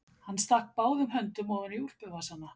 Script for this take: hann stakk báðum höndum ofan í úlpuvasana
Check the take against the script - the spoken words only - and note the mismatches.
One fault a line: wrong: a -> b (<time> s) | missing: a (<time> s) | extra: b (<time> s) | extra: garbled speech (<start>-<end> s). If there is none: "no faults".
no faults